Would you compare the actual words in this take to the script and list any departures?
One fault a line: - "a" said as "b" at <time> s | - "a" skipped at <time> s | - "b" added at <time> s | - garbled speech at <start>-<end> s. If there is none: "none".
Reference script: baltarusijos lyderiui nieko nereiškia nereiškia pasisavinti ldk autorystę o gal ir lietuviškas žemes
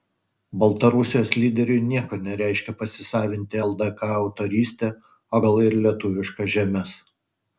- "nereiškia" skipped at 2.8 s